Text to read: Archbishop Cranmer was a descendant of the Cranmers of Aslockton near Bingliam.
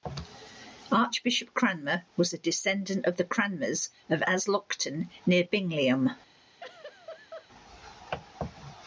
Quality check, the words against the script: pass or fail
pass